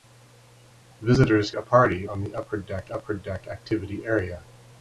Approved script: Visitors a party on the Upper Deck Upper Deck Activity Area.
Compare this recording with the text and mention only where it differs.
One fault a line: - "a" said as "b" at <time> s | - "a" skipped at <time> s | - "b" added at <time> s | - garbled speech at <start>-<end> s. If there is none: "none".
none